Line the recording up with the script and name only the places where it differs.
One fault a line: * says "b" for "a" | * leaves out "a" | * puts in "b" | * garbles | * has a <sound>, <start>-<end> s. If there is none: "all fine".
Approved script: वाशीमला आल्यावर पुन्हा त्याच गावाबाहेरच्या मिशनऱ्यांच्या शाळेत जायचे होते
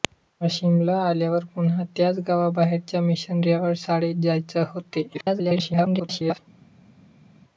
* garbles